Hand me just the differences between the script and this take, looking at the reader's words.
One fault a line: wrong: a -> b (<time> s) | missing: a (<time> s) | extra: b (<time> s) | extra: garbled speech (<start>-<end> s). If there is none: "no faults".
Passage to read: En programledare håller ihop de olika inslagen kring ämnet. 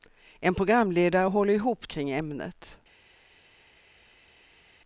missing: de olika inslagen (1.9 s)